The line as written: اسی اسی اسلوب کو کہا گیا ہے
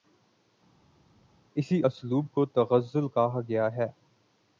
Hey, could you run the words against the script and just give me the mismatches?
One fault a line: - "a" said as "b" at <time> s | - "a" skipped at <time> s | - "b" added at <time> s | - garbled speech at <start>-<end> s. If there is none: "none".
- "اسی" skipped at 1.8 s
- "تغزل" added at 2.5 s